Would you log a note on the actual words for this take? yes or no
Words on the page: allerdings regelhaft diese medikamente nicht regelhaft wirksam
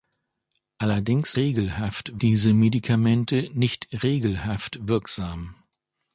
no